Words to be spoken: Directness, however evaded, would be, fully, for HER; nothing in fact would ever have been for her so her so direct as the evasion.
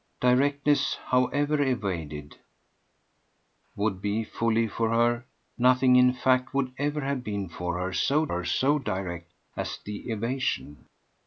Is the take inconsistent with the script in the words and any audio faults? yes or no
no